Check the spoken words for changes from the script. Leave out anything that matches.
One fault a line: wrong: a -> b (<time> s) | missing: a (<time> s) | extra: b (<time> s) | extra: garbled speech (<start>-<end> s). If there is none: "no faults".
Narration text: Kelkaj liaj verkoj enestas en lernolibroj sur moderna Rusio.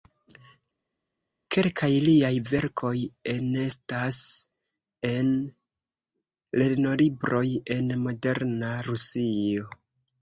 wrong: sur -> en (7.8 s)